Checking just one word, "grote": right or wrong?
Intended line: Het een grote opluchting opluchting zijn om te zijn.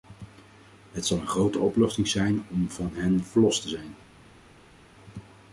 right